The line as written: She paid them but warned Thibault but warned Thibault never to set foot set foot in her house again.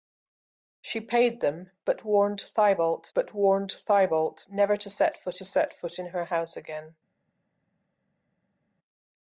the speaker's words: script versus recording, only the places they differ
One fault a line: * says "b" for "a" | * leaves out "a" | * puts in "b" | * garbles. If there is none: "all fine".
all fine